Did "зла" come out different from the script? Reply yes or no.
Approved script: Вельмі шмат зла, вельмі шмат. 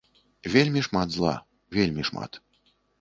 no